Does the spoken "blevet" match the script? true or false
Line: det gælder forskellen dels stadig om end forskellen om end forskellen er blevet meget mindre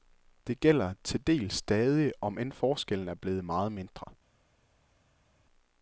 true